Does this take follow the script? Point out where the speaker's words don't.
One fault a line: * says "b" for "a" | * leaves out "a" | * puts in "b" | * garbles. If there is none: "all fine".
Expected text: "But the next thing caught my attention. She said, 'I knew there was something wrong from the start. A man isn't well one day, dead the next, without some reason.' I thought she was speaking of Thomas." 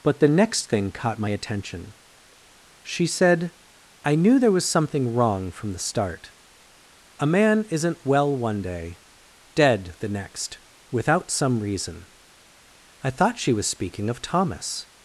all fine